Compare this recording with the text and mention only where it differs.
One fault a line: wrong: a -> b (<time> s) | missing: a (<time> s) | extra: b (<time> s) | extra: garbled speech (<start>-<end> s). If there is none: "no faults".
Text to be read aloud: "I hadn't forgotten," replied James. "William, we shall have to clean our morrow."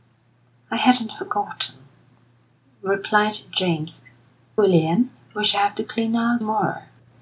no faults